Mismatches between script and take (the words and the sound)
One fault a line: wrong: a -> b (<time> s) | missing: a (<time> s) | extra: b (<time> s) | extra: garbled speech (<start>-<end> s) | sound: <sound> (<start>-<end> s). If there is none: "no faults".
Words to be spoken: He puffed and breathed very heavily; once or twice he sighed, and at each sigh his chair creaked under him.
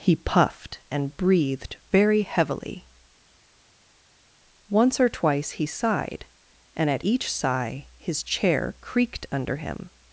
no faults